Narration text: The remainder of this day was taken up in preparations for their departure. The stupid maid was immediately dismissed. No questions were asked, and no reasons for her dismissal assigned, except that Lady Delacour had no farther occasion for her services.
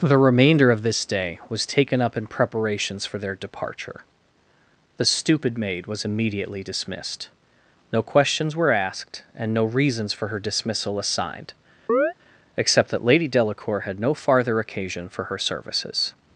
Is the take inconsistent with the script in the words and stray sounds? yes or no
yes